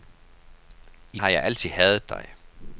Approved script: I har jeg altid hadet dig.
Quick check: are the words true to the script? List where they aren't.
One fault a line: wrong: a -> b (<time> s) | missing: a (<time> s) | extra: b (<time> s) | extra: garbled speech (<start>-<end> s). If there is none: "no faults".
no faults